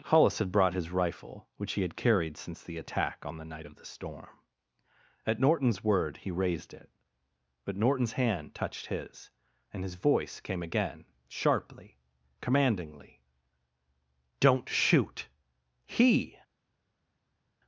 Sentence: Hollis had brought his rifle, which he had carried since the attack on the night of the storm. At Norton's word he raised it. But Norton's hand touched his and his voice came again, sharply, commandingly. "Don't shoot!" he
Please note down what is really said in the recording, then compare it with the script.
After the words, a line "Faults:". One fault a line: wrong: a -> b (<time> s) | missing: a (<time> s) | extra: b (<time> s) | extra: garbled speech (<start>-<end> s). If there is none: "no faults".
Hollis had brought his rifle, which he had carried since the attack on the night of the storm. At Norton's word he raised it. But Norton's hand touched his and his voice came again, sharply, commandingly. "Don't shoot!" he
Faults:
no faults